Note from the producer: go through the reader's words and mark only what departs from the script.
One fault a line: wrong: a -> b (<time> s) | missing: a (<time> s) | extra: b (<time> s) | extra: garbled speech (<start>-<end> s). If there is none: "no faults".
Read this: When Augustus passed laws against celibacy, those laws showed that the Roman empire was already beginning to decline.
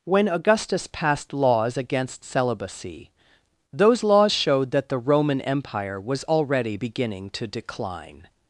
no faults